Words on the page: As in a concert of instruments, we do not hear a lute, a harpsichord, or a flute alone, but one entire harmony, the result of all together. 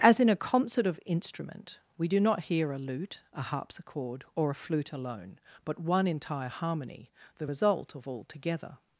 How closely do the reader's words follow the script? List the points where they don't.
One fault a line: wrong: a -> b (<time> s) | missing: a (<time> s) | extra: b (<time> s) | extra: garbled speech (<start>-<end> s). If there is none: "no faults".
wrong: instruments -> instrument (1.0 s)